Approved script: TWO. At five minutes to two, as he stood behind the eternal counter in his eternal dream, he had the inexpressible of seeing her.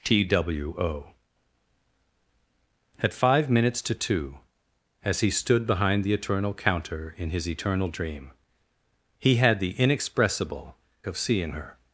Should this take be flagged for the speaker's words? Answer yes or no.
no